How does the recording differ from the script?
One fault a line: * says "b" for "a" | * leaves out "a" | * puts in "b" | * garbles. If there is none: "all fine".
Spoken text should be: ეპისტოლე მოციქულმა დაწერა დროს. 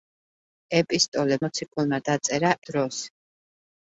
all fine